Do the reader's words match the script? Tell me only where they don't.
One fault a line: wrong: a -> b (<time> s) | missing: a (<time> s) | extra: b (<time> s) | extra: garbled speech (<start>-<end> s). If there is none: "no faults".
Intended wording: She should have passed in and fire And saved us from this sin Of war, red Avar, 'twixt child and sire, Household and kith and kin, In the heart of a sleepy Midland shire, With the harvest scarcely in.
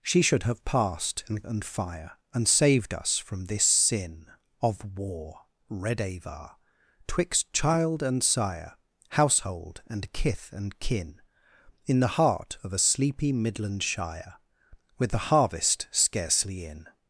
no faults